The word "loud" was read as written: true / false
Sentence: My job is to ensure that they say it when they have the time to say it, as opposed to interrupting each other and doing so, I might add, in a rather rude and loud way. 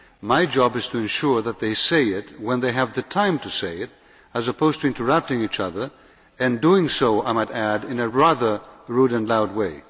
true